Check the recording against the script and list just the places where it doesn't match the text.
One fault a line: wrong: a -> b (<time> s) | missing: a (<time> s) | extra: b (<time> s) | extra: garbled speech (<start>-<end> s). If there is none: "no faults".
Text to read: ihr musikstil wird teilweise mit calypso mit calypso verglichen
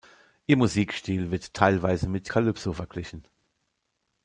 missing: mit calypso (2.7 s)